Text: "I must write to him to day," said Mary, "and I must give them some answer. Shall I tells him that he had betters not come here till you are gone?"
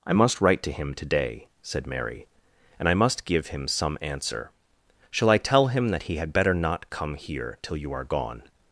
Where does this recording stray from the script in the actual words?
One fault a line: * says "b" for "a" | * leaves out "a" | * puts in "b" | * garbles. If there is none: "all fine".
* says "him" for "them"
* says "tell" for "tells"
* says "better" for "betters"